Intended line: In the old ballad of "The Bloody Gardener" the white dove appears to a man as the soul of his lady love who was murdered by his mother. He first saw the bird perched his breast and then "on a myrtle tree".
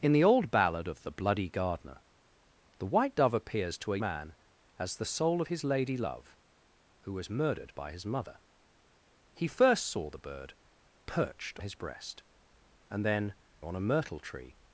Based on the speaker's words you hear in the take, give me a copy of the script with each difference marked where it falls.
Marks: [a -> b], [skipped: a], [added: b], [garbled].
In the old ballad of "The Bloody Gardener" the white dove appears to a man as the soul of his lady love who was murdered by his mother. He first saw the bird perched his breast and then "on a myrtle tree".